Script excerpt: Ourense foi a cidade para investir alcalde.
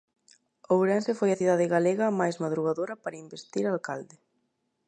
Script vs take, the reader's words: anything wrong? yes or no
yes